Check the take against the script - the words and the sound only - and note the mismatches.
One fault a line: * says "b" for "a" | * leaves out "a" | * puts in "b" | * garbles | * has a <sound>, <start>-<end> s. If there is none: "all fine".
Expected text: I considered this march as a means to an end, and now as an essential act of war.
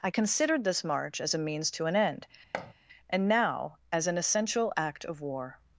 * has a thud, 2.5-2.7 s